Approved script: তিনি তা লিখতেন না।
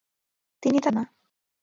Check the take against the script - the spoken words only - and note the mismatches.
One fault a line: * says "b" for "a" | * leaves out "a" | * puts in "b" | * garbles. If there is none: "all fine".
* leaves out "লিখতেন"